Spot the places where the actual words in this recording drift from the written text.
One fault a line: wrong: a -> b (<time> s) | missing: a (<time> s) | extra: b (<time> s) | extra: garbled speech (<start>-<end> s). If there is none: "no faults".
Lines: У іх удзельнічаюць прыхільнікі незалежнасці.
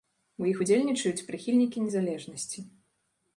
no faults